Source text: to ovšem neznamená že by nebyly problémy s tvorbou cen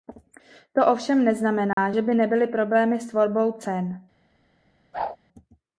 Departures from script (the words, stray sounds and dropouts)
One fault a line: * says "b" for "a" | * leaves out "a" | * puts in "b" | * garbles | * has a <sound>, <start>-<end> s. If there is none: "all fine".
* has a dropout, 1.7-1.8 s
* has a whoosh, 4.9-5.2 s